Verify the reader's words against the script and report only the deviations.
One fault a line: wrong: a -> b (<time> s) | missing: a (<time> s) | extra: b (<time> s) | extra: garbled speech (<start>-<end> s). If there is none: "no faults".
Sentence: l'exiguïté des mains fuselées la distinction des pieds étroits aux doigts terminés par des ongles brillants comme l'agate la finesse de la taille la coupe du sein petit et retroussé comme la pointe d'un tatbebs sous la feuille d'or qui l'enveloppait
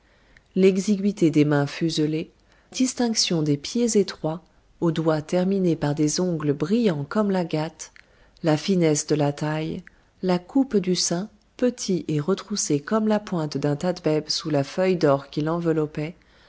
missing: la (2.3 s)